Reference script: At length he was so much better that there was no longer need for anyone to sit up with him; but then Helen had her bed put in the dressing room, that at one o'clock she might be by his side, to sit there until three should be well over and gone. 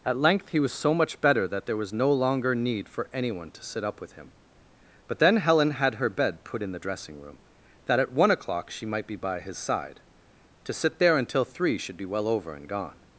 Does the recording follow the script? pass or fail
pass